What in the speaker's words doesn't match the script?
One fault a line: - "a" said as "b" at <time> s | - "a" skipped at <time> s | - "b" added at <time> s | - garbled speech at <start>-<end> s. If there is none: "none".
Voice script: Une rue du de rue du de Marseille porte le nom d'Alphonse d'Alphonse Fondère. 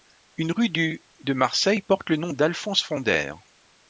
- "rue du de" skipped at 1.3 s
- "d'Alphonse" skipped at 2.8 s